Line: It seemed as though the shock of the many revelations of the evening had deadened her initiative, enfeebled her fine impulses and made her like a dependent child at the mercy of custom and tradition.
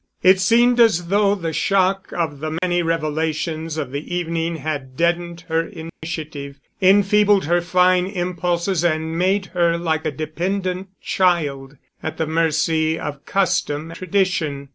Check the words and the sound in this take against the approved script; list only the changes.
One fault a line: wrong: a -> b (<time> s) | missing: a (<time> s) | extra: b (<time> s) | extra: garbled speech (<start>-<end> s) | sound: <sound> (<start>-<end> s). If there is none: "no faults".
sound: dropout (2.6-2.6 s)
sound: dropout (5.9-6.0 s)
missing: and (13.9 s)